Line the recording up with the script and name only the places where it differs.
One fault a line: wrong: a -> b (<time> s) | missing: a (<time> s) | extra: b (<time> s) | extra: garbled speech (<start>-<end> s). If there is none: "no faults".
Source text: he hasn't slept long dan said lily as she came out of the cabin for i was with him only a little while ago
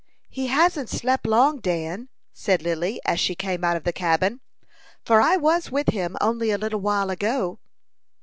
no faults